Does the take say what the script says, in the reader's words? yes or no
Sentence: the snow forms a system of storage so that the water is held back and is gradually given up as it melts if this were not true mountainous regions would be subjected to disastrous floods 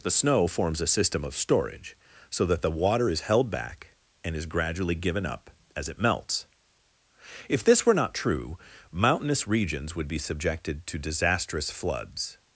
yes